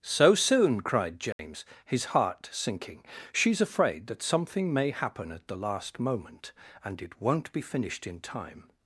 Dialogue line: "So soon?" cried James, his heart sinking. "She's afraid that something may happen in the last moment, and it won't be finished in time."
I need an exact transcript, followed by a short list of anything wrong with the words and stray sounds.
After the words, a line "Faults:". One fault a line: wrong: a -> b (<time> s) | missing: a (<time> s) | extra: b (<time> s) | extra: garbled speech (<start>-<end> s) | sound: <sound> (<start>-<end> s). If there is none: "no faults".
"So soon?" cried James, his heart sinking. "She's afraid that something may happen at the last moment, and it won't be finished in time."
Faults:
sound: dropout (1.3-1.4 s)
wrong: in -> at (5.3 s)